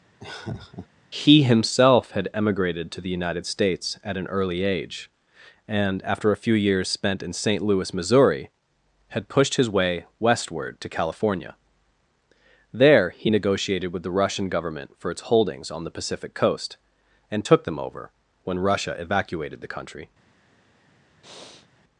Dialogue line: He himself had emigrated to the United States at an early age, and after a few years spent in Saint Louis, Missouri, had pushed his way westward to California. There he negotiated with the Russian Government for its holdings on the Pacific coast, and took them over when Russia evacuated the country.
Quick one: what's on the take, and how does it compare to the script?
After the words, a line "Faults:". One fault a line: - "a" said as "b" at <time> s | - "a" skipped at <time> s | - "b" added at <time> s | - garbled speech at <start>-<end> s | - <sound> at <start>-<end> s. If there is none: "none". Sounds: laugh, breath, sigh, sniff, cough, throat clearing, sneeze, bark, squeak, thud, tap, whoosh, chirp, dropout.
He himself had emigrated to the United States at an early age, and after a few years spent in Saint Louis, Missouri, had pushed his way westward to California. There he negotiated with the Russian Government for its holdings on the Pacific coast, and took them over when Russia evacuated the country.
Faults:
- laugh at 0.2-0.9 s
- breath at 21.2-21.7 s